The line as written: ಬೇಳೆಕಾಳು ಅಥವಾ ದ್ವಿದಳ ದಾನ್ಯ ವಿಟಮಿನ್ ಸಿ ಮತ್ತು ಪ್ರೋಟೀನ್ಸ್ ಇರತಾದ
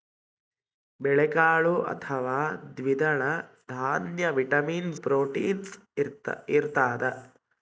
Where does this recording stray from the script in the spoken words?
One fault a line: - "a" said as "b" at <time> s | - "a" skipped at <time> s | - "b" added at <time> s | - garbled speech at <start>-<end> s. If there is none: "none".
- "ಸಿ ಮತ್ತು" skipped at 4.9 s